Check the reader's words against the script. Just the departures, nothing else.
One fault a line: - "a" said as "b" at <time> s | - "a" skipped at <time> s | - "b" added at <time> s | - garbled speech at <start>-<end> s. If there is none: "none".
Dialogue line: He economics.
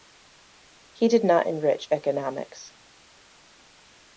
- "did not enrich" added at 1.1 s